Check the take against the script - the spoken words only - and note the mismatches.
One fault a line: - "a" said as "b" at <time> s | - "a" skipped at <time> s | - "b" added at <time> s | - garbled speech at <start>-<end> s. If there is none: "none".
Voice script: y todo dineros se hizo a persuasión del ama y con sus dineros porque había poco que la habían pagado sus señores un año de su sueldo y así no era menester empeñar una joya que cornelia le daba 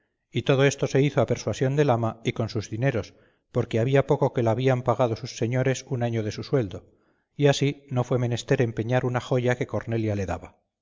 - "dineros" said as "esto" at 0.7 s
- "era" said as "fue" at 8.0 s